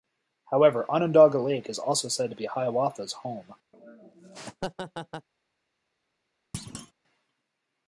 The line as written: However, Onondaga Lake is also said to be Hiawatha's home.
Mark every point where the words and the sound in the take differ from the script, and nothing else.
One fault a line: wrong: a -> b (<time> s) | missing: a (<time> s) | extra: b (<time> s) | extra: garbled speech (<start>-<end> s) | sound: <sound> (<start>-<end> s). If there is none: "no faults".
sound: laugh (3.7-5.3 s)
sound: thud (6.5-6.9 s)